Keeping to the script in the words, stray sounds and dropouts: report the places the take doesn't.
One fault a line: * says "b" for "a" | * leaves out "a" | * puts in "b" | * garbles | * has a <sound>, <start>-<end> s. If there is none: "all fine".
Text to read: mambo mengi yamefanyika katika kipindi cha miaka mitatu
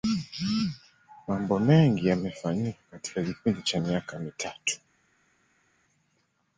all fine